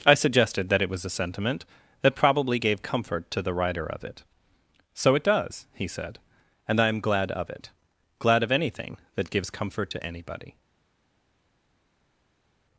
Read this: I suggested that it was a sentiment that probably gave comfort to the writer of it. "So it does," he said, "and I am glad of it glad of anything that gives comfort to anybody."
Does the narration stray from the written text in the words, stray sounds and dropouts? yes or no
no